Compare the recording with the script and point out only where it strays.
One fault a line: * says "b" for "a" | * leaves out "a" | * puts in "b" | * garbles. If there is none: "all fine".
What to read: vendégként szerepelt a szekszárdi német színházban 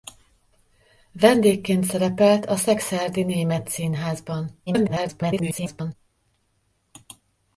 * garbles